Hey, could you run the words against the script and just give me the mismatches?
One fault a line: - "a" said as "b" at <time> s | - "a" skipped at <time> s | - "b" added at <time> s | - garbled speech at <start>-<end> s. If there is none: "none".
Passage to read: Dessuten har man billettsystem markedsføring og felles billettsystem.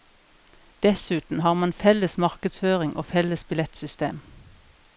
- "billettsystem" said as "felles" at 1.7 s